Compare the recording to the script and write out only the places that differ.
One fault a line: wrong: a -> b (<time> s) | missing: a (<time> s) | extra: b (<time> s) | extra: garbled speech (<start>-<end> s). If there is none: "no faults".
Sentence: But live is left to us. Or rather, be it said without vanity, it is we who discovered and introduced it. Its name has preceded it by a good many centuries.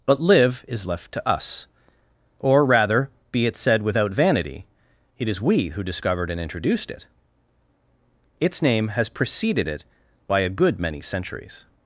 no faults